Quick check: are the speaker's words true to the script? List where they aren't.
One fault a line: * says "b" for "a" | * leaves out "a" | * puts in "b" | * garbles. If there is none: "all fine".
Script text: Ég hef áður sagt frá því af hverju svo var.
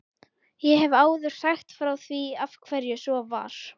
all fine